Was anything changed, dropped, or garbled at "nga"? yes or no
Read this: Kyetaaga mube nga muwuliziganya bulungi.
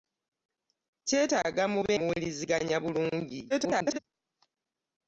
yes